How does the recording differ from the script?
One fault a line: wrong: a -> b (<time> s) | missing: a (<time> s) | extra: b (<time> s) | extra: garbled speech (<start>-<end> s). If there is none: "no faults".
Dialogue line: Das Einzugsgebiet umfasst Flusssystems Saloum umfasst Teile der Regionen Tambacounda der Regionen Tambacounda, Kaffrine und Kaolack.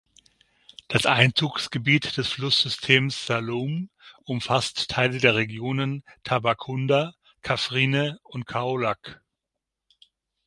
wrong: umfasst -> des (2.2 s)
missing: der Regionen Tambacounda (7.1 s)